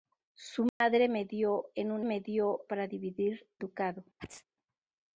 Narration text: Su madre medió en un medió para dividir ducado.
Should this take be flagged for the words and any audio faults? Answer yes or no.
yes